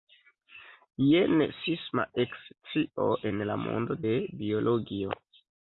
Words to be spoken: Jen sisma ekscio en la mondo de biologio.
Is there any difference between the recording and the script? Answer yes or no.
no